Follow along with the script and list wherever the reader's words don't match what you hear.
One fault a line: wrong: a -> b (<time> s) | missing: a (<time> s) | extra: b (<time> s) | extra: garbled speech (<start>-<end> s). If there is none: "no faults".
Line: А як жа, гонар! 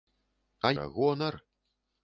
missing: як (0.7 s)